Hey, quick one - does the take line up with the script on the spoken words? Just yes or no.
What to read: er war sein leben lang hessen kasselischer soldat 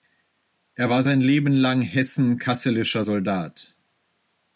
yes